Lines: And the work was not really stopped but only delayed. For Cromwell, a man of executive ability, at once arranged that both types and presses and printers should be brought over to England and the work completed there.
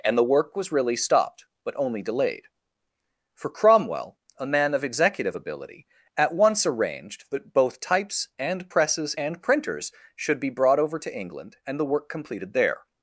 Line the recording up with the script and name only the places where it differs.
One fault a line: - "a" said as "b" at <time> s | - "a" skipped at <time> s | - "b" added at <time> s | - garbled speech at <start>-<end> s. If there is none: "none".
- "not" skipped at 0.7 s